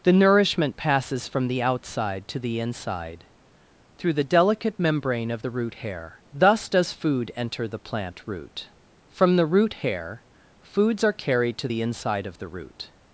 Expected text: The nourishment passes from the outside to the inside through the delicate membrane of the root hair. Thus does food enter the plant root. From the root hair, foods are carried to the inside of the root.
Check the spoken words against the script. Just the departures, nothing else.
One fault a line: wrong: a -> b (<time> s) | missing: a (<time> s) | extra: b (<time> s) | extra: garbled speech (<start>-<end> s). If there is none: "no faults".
no faults